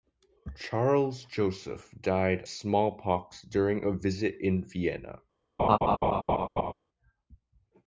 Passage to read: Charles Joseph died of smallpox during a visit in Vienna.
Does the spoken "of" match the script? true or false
false